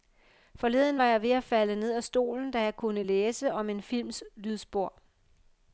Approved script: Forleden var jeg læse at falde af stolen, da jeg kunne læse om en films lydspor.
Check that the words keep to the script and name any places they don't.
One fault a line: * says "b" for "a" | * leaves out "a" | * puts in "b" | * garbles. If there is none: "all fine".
* says "ved" for "læse"
* puts in "ned"